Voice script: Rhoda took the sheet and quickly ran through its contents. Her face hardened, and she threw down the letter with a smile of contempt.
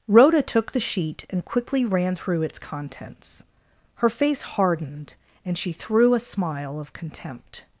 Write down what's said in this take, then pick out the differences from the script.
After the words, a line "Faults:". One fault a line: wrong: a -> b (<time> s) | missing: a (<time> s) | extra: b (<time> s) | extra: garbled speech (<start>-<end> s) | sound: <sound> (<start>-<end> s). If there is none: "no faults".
Rhoda took the sheet and quickly ran through its contents. Her face hardened, and she threw a smile of contempt.
Faults:
missing: down the letter with (6.1 s)